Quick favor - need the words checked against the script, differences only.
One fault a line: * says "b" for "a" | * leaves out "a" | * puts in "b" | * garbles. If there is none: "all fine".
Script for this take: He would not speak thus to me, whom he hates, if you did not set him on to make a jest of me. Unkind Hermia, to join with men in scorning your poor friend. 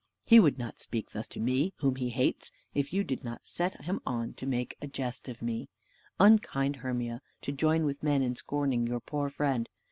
all fine